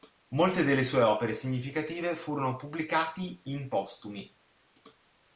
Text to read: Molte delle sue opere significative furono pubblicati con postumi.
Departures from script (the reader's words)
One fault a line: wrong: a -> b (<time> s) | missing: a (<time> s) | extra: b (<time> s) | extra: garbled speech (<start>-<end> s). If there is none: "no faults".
wrong: con -> in (3.4 s)